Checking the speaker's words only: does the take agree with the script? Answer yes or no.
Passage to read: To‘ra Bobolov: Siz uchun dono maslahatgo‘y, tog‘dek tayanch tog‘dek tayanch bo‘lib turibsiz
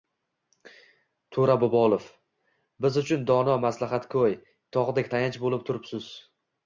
no